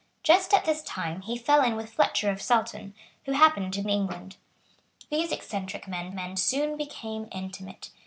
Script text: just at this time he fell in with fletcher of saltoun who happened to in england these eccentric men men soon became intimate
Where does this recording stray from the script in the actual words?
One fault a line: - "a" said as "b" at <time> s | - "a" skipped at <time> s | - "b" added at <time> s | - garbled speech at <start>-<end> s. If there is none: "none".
none